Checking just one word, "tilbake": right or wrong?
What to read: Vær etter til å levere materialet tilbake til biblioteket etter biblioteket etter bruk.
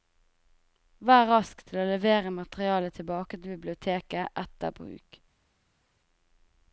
right